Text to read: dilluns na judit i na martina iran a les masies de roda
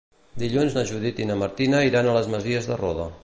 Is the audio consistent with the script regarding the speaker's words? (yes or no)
yes